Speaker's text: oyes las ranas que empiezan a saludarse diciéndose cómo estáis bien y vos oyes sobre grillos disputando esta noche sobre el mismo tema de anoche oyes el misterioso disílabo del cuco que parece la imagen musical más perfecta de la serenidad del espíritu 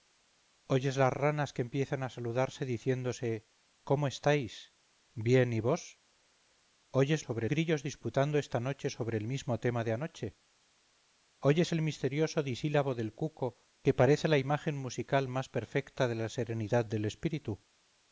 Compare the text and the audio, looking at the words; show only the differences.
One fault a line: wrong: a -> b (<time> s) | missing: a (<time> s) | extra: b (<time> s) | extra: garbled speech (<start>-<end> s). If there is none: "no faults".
no faults